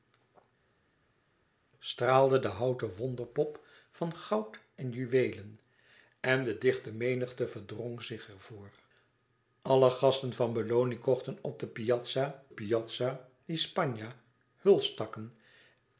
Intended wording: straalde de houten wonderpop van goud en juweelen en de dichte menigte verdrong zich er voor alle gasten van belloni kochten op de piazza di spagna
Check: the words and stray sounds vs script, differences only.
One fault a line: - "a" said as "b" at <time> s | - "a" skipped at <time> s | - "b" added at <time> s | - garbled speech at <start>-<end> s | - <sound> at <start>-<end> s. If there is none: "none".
- "piazza" added at 12.5 s